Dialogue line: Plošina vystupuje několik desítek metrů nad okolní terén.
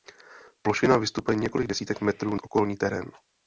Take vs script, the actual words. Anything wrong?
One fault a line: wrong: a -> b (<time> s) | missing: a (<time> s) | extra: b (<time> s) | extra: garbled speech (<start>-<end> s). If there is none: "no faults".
missing: nad (2.4 s)